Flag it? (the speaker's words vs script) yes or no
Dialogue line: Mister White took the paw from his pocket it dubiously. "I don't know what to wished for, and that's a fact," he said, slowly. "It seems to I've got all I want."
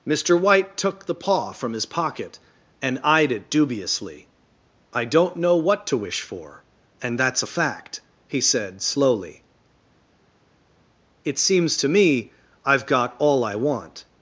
yes